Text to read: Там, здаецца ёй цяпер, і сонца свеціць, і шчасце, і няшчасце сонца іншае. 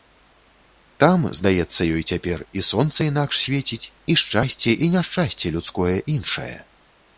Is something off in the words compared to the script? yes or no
yes